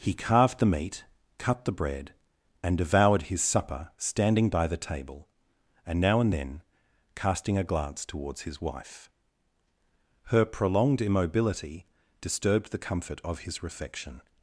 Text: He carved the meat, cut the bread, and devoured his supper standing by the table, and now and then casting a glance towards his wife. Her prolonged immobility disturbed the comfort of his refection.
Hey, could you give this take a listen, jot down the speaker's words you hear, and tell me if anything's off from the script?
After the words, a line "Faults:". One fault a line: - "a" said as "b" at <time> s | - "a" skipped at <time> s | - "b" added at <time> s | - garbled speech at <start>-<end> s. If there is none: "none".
He carved the meat, cut the bread, and devoured his supper standing by the table, and now and then casting a glance towards his wife. Her prolonged immobility disturbed the comfort of his refection.
Faults:
none